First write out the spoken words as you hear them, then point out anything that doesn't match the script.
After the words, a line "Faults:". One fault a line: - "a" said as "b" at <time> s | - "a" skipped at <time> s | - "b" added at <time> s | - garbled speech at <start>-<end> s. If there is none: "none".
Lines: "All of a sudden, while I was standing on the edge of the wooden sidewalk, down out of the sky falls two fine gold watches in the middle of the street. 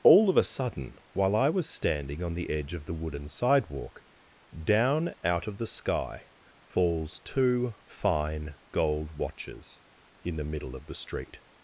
"All of a sudden, while I was standing on the edge of the wooden sidewalk, down out of the sky falls two fine gold watches in the middle of the street.
Faults:
none